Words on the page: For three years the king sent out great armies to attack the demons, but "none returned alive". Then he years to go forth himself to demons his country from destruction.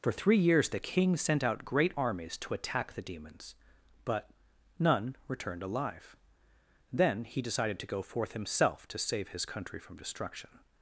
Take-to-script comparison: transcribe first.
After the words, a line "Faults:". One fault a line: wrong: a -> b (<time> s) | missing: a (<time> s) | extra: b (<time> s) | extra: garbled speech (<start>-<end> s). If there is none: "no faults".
For three years the king sent out great armies to attack the demons, but "none returned alive". Then he decided to go forth himself to save his country from destruction.
Faults:
wrong: years -> decided (7.4 s)
wrong: demons -> save (9.0 s)